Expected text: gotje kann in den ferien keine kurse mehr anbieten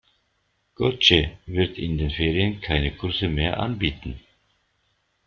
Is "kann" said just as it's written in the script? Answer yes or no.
no